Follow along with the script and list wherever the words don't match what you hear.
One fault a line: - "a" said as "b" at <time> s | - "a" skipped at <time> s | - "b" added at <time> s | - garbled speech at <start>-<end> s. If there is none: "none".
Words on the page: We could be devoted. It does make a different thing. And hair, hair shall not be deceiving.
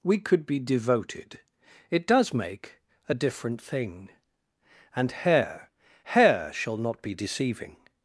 none